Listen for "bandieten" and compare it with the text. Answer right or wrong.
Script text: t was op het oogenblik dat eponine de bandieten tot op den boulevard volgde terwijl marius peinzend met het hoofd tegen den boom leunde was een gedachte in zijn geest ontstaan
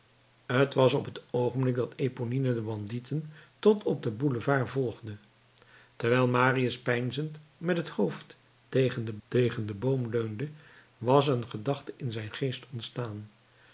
right